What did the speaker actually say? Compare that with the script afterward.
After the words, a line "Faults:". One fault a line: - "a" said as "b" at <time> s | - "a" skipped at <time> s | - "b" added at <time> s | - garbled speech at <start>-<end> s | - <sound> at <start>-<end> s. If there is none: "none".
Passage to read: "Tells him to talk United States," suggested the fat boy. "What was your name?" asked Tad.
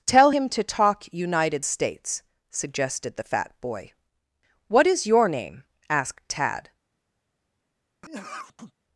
"Tell him to talk United States," suggested the fat boy. "What is your name?" asked Tad.
Faults:
- "Tells" said as "Tell" at 0.1 s
- "was" said as "is" at 4.9 s
- sneeze at 8.0-8.7 s